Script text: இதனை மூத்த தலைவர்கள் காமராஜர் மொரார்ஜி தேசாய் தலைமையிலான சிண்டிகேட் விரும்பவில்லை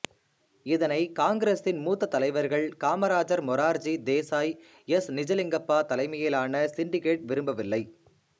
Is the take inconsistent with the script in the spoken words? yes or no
yes